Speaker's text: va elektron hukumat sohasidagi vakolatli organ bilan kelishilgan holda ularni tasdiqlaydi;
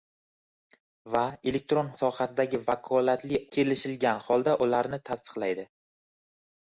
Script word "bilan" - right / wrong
wrong